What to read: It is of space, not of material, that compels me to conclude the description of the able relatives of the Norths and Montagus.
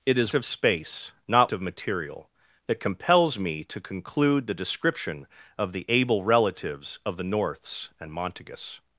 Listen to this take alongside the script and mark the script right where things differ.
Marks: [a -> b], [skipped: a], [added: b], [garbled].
It is of space, not of material, that compels me to conclude the description of the able relatives of the Norths and Montagus.